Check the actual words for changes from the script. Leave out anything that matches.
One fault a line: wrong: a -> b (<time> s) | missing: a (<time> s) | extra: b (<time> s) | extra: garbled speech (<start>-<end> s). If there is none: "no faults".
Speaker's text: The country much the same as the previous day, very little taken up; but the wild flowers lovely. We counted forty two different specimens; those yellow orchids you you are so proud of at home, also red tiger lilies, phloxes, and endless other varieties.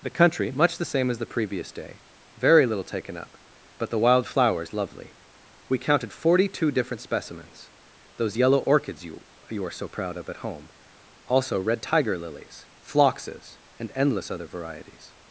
no faults